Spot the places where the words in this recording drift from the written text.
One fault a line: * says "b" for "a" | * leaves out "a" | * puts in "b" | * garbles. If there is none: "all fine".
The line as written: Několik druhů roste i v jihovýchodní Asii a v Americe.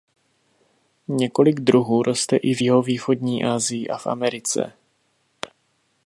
all fine